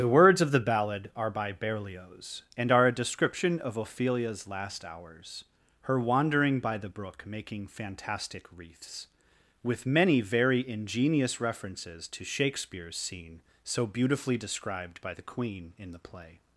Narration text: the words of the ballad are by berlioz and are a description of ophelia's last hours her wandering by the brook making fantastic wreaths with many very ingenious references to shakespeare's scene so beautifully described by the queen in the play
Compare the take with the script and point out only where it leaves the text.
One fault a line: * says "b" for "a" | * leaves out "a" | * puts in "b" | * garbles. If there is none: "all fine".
all fine